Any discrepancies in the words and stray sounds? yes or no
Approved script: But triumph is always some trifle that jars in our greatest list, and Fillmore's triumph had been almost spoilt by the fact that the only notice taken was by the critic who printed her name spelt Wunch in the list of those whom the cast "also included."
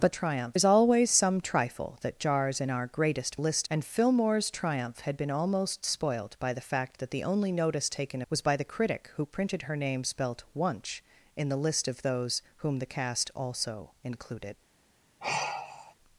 yes